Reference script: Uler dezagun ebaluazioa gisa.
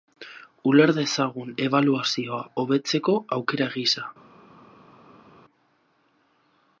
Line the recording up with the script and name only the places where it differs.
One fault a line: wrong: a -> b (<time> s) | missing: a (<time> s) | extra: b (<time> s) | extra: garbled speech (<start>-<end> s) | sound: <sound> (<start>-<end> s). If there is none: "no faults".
extra: hobetzeko aukera (2.6 s)